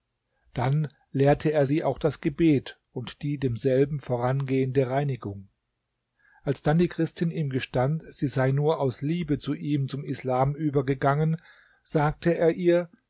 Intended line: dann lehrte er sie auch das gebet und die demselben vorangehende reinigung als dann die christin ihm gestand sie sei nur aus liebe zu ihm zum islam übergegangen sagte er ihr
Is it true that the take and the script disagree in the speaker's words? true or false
false